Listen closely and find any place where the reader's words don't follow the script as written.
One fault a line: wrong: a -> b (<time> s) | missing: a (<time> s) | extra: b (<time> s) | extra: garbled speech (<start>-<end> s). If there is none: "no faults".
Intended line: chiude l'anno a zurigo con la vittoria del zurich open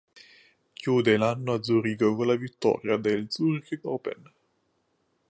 no faults